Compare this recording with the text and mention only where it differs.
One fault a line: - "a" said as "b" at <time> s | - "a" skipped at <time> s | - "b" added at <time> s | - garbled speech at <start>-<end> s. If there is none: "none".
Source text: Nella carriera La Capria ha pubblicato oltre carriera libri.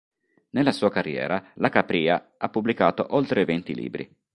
- "sua" added at 0.7 s
- "carriera" said as "venti" at 3.5 s